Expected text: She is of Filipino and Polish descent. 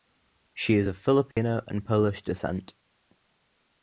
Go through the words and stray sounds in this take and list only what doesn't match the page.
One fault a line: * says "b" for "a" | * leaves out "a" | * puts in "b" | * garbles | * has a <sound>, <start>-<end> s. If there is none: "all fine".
* has a dropout, 1.3-1.4 s